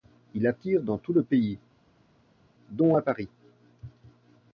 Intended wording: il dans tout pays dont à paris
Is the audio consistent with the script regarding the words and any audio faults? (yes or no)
no